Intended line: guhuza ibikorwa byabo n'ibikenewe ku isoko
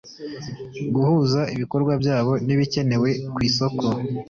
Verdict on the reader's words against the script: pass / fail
pass